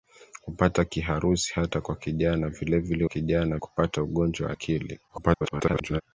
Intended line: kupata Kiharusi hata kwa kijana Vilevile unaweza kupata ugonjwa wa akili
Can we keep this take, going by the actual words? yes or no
no